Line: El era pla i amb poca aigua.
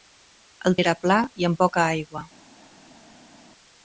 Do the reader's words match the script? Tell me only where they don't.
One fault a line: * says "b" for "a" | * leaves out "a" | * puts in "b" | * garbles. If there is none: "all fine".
all fine